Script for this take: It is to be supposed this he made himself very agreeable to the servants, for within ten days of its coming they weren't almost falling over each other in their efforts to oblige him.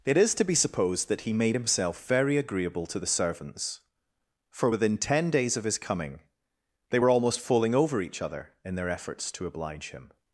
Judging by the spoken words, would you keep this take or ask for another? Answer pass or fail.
fail